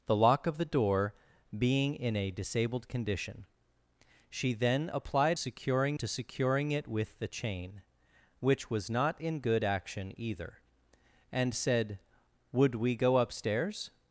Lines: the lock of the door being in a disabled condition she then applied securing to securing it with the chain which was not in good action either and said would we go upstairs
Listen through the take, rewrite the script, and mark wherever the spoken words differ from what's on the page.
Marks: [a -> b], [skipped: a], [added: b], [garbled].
the lock of the door being in a disabled condition she then applied securing to securing it with the chain which was not in good action either and said would we go upstairs